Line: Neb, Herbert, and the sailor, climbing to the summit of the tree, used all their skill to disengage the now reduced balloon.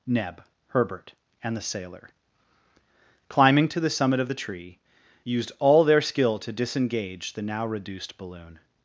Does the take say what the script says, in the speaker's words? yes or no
yes